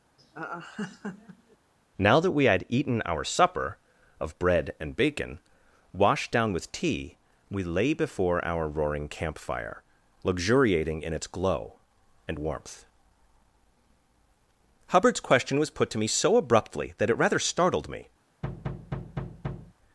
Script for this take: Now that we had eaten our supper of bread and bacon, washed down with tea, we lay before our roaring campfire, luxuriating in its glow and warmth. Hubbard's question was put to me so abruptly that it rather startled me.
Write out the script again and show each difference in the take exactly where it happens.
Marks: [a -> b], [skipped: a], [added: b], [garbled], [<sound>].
[laugh] Now that we had eaten our supper of bread and bacon, washed down with tea, we lay before our roaring campfire, luxuriating in its glow and warmth. Hubbard's question was put to me so abruptly that it rather startled me. [thud]